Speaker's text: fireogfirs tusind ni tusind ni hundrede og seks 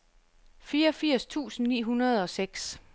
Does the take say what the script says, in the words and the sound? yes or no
no